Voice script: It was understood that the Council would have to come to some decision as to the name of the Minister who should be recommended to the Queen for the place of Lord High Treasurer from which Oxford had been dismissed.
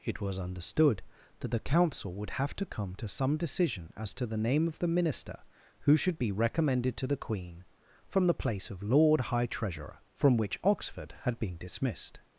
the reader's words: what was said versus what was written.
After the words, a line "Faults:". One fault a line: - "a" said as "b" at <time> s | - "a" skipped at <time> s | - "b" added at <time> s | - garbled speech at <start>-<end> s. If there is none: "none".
It was understood that the Council would have to come to some decision as to the name of the Minister who should be recommended to the Queen from the place of Lord High Treasurer from which Oxford had been dismissed.
Faults:
- "for" said as "from" at 8.1 s